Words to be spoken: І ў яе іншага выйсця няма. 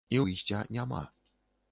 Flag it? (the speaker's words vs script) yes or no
yes